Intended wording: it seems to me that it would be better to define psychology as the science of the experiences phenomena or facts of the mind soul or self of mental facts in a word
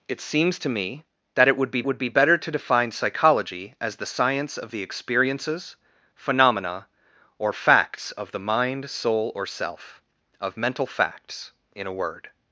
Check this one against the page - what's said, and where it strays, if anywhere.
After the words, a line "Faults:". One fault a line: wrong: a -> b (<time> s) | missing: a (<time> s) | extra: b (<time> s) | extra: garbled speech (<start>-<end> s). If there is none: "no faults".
it seems to me that it would be would be better to define psychology as the science of the experiences phenomena or facts of the mind soul or self of mental facts in a word
Faults:
extra: would be (1.8 s)